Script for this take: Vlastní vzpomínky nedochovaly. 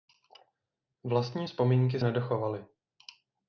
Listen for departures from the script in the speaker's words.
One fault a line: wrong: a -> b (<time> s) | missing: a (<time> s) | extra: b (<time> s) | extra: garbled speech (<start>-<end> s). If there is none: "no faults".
no faults